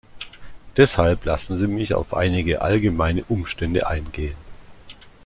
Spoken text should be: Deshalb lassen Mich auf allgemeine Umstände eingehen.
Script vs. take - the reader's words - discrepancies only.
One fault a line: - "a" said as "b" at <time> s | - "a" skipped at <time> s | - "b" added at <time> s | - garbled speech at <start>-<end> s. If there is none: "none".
- "Sie" added at 1.6 s
- "einige" added at 2.1 s